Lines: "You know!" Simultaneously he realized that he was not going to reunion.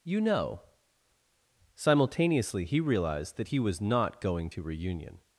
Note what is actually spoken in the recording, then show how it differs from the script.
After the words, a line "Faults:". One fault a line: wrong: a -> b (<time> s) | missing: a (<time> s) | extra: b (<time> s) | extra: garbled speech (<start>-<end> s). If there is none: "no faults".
"You know!" Simultaneously he realized that he was not going to reunion.
Faults:
no faults